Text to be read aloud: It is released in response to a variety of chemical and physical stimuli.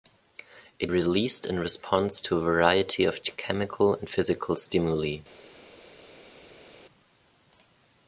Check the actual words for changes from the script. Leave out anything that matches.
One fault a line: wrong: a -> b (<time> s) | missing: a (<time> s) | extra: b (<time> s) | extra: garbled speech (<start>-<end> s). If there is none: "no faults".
missing: is (0.9 s)